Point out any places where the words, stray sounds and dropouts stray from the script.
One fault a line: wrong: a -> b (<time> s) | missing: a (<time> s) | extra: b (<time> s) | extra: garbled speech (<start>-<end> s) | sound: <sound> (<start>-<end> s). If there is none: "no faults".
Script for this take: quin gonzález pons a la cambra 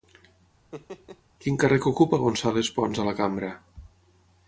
sound: laugh (0.7-1.2 s)
extra: càrrec ocupa (1.6 s)